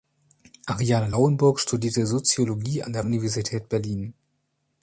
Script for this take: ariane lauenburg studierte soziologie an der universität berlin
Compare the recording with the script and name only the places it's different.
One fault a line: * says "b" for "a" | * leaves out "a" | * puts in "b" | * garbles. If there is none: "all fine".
all fine